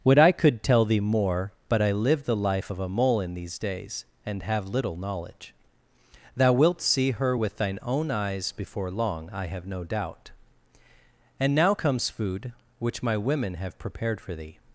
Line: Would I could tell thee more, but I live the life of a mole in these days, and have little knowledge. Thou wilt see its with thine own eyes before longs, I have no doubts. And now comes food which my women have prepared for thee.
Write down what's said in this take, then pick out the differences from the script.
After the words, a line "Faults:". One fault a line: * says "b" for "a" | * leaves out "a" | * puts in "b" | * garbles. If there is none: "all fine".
Would I could tell thee more, but I live the life of a mole in these days, and have little knowledge. Thou wilt see her with thine own eyes before long, I have no doubt. And now comes food which my women have prepared for thee.
Faults:
* says "her" for "its"
* says "long" for "longs"
* says "doubt" for "doubts"